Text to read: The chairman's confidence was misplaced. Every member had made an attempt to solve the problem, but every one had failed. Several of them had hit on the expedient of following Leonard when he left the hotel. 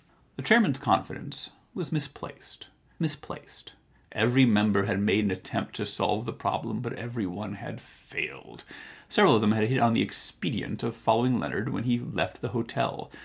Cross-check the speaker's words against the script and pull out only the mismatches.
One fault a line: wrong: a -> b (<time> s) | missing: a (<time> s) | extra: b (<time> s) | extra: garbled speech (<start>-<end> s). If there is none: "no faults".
extra: misplaced (3.0 s)